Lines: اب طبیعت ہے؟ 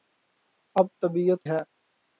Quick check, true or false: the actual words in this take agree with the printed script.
true